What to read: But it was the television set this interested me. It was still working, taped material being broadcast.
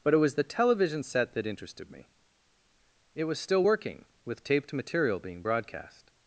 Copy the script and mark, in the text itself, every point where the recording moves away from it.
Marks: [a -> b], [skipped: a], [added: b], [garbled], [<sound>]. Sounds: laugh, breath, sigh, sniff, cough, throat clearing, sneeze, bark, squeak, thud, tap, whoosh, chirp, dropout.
But it was the television set [this -> that] interested me. It was still working, [added: with] taped material being broadcast.